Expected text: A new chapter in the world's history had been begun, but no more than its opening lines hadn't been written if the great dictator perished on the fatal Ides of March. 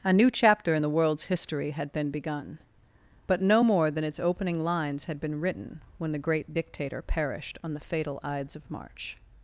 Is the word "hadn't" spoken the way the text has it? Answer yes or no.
no